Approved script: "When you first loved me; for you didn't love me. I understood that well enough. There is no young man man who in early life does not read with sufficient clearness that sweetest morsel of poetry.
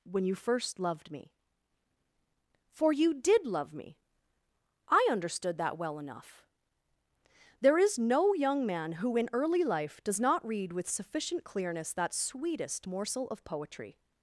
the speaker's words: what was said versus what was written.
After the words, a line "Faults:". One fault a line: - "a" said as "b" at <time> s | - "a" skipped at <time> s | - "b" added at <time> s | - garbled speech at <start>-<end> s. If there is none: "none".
"When you first loved me; for you did love me. I understood that well enough. There is no young man who in early life does not read with sufficient clearness that sweetest morsel of poetry.
Faults:
- "didn't" said as "did" at 3.1 s
- "man" skipped at 8.9 s